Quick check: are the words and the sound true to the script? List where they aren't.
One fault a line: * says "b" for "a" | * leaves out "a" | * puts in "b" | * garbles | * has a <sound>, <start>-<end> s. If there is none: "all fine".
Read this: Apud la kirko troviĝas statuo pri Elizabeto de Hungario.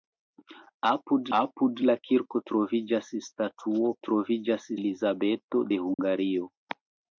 * puts in "apud"
* says "troviĝas" for "pri"
* has a dropout, 5.9-6.0 s